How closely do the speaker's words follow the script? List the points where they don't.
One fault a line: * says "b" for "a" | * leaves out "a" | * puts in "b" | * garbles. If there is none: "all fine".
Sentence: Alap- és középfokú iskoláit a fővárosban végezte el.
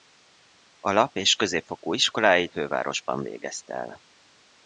* leaves out "a"